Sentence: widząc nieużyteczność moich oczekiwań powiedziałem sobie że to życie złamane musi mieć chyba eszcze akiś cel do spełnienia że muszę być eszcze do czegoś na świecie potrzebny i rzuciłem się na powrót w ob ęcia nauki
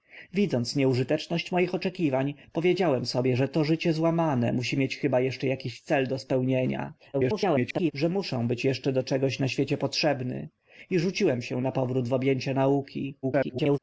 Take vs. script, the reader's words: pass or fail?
fail